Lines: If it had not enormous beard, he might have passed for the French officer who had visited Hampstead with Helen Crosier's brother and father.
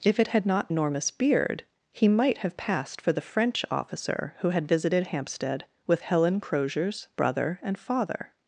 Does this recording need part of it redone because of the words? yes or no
no